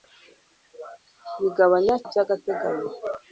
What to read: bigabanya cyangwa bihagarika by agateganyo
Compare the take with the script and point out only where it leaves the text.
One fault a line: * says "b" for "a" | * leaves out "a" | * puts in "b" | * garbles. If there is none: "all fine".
* leaves out "cyangwa bihagarika"